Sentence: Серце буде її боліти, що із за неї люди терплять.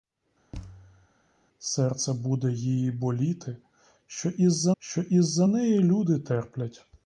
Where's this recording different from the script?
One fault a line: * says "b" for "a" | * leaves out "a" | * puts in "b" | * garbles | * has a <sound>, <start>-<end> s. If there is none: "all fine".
* has a thud, 0.5-1.1 s
* puts in "що із за"